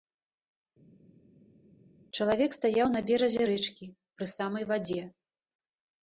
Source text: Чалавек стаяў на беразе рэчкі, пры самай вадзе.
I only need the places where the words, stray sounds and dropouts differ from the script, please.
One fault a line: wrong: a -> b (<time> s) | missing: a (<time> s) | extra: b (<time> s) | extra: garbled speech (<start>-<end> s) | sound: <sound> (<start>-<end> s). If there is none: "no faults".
no faults